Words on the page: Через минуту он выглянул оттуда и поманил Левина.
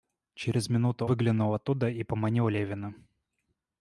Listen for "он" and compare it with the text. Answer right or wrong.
wrong